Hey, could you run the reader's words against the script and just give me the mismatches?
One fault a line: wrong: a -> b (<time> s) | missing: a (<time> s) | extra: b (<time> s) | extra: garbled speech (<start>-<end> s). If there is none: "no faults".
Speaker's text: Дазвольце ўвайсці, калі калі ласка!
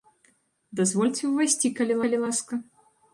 no faults